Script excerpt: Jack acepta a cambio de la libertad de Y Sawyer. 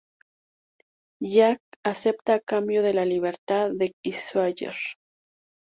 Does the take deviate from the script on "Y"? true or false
false